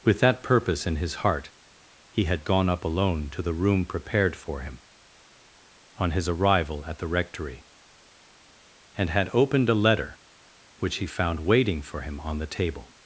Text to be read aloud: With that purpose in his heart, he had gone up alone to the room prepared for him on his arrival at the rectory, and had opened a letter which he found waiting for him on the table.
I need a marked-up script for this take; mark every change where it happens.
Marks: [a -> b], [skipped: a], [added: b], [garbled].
With that purpose in his heart, he had gone up alone to the room prepared for him on his arrival at the rectory, and had opened a letter which he found waiting for him on the table.